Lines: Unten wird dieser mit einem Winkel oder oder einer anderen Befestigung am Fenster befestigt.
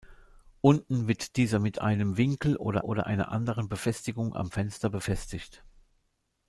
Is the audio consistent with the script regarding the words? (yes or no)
yes